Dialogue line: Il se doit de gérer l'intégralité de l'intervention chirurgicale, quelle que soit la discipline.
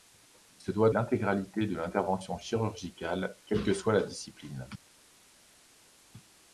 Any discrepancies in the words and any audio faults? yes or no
yes